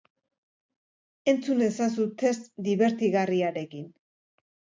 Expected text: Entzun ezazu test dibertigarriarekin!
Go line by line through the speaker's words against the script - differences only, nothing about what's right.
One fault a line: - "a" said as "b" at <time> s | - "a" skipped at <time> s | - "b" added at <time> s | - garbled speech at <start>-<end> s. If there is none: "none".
none